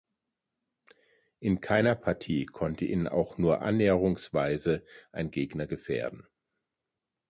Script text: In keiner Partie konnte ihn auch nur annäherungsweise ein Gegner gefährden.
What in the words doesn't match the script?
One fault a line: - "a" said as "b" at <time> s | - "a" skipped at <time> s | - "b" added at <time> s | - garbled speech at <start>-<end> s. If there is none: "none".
none